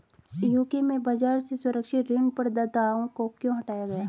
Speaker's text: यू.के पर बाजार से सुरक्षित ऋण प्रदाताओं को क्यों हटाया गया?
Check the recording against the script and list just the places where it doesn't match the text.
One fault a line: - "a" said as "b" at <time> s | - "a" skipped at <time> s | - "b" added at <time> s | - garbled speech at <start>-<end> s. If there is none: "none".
- "पर" said as "में" at 0.8 s